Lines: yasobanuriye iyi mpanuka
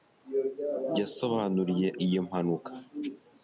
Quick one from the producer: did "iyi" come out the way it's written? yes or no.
yes